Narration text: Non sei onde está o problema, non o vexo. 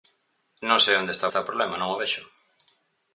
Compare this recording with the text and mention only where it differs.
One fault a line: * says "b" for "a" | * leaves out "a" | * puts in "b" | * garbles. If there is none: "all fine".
* puts in "está"